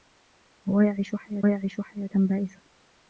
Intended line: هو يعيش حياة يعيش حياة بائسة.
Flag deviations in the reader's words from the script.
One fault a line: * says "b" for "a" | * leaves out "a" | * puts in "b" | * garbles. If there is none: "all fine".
all fine